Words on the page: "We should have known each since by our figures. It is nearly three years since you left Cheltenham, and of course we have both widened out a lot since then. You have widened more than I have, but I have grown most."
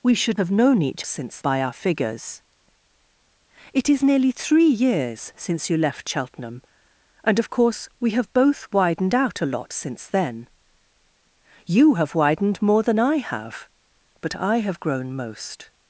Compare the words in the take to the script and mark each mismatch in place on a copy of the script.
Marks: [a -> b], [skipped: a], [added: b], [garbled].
"We should have known each since by our figures. It is nearly three years since you left Cheltenham, and of course we have both widened out a lot since then. You have widened more than I have, but I have grown most."